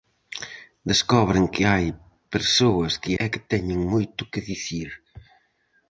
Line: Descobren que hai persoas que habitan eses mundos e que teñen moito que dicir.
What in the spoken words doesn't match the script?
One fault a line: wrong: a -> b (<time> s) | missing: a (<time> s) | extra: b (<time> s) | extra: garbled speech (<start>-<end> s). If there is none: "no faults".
missing: habitan eses mundos (3.1 s)